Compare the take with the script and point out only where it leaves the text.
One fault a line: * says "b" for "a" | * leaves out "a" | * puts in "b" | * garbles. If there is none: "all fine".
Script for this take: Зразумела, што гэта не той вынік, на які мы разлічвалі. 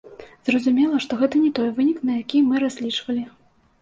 all fine